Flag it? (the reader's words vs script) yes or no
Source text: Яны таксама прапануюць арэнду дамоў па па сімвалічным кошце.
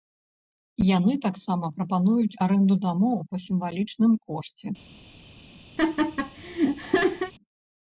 yes